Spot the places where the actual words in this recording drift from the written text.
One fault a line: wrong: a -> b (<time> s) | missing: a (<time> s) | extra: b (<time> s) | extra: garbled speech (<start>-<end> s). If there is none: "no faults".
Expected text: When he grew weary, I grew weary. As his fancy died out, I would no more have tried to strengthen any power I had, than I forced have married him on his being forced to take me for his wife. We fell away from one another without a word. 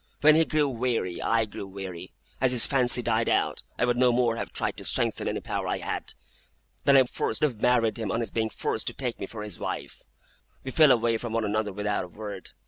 no faults